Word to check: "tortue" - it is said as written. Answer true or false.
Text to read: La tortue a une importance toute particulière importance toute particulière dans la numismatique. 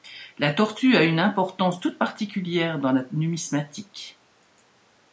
true